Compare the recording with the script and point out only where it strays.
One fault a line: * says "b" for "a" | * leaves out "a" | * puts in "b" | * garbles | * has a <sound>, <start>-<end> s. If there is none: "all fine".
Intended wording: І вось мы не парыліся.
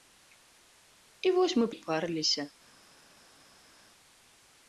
all fine